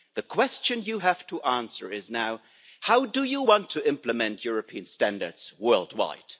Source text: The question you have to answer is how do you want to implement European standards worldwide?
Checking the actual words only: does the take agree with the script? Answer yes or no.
no